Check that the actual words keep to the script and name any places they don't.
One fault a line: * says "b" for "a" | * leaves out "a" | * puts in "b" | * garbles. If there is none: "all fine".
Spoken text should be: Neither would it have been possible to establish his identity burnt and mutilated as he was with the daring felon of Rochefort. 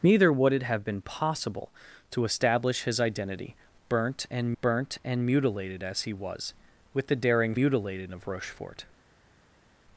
* puts in "burnt and"
* says "mutilated" for "felon"